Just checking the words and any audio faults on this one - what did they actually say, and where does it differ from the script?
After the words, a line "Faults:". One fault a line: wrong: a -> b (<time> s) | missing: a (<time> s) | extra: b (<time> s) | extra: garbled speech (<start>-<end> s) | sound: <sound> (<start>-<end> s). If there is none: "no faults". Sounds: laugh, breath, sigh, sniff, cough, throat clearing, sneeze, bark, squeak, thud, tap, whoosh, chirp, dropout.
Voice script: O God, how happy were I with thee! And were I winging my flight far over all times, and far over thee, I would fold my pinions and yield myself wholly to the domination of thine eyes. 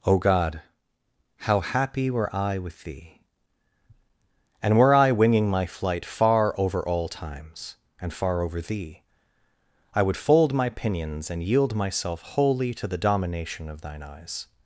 O God, how happy were I with thee! And were I winging my flight far over all times, and far over thee, I would fold my pinions and yield myself wholly to the domination of thine eyes.
Faults:
no faults